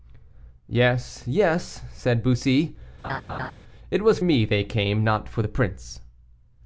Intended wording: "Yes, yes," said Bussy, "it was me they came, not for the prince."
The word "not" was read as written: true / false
true